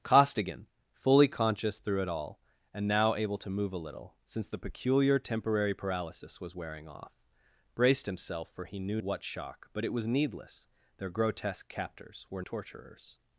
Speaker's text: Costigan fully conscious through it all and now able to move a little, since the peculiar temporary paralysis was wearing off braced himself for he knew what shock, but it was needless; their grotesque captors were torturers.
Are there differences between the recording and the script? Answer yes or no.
no